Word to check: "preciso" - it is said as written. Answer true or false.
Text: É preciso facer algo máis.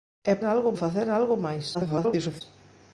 false